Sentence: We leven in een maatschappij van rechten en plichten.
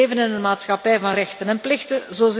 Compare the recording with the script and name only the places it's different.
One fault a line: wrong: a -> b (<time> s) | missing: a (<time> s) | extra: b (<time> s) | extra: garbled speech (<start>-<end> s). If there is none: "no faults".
no faults